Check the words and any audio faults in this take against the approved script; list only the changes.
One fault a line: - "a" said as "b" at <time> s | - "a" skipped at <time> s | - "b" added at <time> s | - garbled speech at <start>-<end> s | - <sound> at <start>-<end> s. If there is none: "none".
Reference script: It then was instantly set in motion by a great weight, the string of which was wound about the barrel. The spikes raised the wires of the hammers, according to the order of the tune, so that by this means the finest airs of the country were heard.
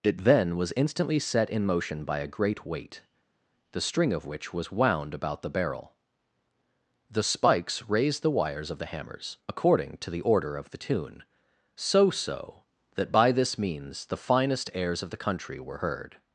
- "so" added at 12.1 s